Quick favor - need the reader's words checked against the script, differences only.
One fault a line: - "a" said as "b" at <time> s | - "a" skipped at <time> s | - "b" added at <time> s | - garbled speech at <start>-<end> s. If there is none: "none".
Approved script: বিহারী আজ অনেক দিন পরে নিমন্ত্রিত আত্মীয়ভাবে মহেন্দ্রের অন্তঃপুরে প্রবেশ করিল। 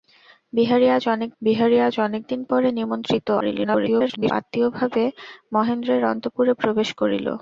- "বিহারী আজ অনেক" added at 1.4 s
- garbled speech at 3.4-4.3 s